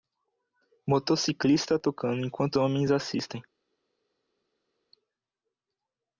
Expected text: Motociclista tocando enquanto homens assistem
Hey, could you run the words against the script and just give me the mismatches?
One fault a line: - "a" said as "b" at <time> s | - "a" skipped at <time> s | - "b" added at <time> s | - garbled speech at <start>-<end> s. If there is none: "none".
none